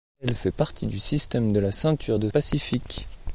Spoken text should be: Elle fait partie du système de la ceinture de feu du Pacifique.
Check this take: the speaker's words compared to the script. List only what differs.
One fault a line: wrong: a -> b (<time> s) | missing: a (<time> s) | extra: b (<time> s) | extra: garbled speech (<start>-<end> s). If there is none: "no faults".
missing: feu du (2.3 s)